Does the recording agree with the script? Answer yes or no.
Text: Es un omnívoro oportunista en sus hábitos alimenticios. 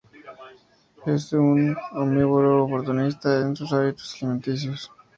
yes